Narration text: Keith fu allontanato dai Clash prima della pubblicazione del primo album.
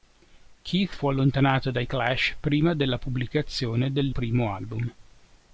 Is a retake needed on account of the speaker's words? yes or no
no